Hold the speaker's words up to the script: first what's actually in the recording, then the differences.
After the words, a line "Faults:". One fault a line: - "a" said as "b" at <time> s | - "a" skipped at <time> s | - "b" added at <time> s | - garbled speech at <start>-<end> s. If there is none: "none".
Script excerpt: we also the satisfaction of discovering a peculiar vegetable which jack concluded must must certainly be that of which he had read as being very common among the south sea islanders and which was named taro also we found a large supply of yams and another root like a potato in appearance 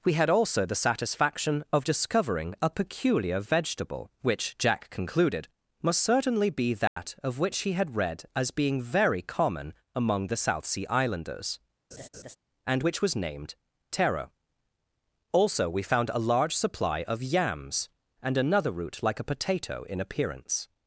we had also the satisfaction of discovering a peculiar vegetable which jack concluded must certainly be that of which he had read as being very common among the south sea islanders and which was named taro also we found a large supply of yams and another root like a potato in appearance
Faults:
- "had" added at 0.1 s
- "must" skipped at 6.0 s